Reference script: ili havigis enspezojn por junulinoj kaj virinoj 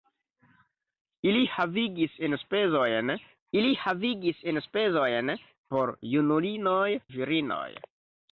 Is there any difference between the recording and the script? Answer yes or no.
yes